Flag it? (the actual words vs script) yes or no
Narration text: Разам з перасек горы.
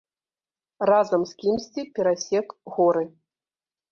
yes